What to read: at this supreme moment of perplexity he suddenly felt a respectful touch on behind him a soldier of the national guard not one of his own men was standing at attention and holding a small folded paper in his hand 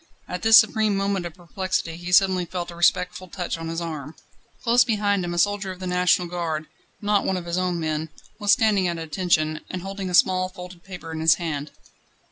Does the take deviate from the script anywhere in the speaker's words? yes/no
yes